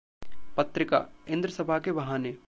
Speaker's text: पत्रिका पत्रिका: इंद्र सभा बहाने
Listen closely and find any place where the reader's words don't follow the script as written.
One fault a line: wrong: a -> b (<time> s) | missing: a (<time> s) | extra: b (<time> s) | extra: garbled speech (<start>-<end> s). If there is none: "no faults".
missing: पत्रिका (1.1 s)
extra: के (1.8 s)